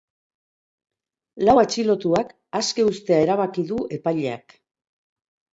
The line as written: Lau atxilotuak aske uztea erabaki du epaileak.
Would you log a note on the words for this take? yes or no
no